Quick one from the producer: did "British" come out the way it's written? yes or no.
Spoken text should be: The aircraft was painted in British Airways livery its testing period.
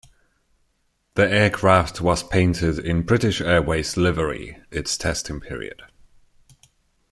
yes